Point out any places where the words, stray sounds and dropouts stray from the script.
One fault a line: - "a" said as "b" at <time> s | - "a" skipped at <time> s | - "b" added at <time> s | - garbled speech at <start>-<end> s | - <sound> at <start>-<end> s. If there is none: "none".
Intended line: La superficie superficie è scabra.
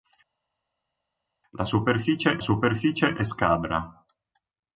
none